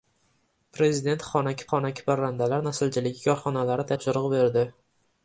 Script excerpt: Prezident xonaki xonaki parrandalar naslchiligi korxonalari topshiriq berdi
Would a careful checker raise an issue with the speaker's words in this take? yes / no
no